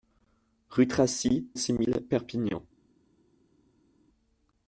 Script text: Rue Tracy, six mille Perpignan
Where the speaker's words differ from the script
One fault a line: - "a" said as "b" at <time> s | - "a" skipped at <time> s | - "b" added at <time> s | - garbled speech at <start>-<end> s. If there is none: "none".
none